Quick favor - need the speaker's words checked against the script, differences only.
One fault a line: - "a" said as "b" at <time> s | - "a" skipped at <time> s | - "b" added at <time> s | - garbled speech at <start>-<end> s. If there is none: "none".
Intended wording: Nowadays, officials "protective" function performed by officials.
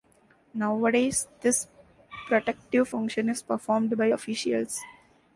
- "officials" said as "this" at 1.4 s
- "is" added at 3.3 s